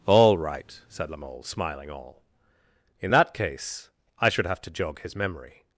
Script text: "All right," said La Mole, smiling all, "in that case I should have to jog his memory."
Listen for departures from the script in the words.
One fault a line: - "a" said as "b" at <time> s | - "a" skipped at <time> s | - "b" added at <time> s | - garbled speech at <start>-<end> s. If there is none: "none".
none